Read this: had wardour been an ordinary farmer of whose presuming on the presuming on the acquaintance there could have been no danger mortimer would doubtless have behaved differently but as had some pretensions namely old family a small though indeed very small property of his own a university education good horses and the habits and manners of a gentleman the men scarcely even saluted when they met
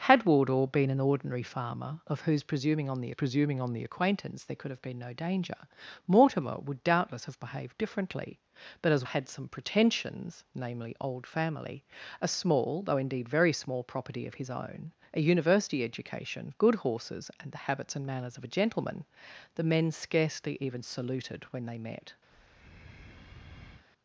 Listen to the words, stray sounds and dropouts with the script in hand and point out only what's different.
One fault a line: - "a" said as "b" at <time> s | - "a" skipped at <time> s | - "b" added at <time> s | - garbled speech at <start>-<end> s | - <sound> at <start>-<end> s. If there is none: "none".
- breath at 22.3-23.9 s